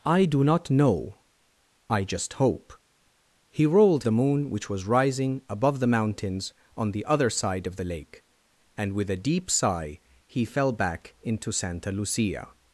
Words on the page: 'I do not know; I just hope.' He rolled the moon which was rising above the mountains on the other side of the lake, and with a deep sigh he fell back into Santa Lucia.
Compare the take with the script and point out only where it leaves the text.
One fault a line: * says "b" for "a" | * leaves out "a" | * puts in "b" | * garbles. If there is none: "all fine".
all fine